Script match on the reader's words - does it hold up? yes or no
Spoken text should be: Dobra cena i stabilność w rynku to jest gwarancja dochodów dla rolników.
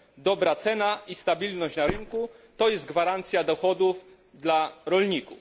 no